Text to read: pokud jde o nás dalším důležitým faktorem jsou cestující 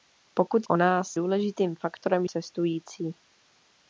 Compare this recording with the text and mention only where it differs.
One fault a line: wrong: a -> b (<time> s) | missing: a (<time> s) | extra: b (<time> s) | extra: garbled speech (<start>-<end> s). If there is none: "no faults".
missing: jde (0.7 s)
missing: dalším (1.1 s)
missing: jsou (2.2 s)